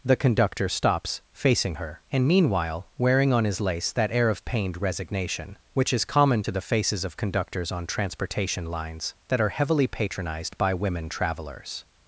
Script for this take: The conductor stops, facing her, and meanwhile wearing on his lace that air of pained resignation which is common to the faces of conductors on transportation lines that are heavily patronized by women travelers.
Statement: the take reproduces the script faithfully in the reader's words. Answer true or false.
true